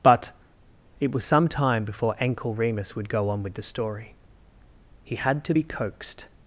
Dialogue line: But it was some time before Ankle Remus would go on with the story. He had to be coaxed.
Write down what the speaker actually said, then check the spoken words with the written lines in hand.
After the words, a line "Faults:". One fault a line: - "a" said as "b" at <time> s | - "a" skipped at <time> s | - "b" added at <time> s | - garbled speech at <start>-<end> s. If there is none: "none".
But it was some time before Ankle Remus would go on with the story. He had to be coaxed.
Faults:
none